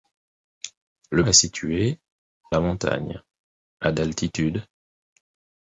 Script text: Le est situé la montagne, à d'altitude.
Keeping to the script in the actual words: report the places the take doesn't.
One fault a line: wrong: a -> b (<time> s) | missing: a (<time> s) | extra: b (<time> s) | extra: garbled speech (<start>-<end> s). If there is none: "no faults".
no faults